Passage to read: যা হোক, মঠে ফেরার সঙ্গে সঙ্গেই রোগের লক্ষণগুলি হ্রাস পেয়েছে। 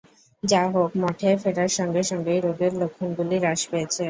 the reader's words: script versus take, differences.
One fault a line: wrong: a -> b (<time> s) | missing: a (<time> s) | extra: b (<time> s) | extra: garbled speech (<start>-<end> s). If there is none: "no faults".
no faults